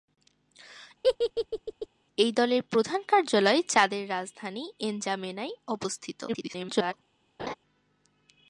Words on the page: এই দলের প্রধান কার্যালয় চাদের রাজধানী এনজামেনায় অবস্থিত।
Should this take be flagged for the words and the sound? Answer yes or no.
yes